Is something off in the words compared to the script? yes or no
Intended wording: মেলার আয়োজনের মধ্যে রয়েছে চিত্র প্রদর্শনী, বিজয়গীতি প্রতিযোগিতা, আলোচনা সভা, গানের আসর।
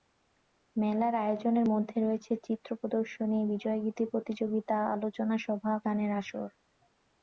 no